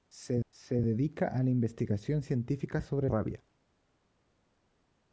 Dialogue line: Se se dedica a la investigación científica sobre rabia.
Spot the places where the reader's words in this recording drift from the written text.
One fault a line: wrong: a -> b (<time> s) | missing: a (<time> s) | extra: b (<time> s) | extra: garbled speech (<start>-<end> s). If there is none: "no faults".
no faults